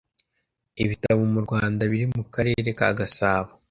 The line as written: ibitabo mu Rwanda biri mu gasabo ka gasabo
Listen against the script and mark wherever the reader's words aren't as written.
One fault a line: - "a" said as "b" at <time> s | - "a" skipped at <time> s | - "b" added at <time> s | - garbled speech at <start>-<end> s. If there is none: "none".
- "gasabo" said as "karere" at 2.3 s